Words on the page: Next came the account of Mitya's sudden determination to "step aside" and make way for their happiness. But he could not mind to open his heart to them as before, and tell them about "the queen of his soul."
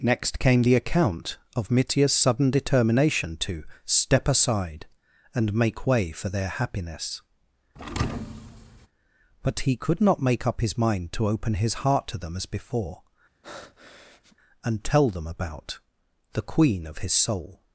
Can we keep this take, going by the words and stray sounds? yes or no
no